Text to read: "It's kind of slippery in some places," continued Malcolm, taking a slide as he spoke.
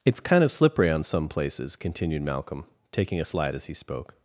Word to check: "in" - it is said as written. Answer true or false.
false